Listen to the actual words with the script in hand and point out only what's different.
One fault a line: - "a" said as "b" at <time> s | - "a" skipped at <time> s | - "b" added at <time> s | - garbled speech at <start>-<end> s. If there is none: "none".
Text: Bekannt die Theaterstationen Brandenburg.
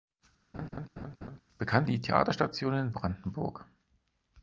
none